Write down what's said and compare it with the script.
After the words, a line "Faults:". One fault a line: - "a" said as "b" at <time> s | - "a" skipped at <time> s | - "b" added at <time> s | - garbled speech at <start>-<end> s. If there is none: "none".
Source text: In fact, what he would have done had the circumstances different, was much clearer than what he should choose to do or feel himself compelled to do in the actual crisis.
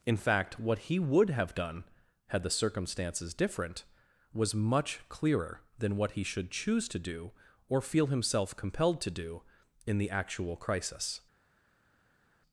In fact, what he would have done had the circumstances different, was much clearer than what he should choose to do or feel himself compelled to do in the actual crisis.
Faults:
none